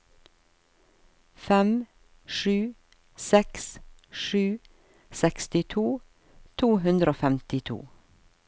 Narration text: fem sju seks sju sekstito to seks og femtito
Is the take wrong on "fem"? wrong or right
right